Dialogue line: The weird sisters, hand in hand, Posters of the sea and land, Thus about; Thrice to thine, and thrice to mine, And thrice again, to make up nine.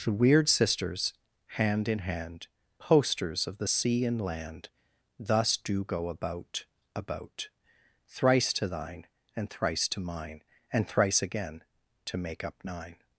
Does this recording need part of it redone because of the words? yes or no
yes